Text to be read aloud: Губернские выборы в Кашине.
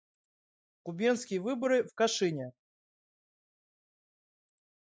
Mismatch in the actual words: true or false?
false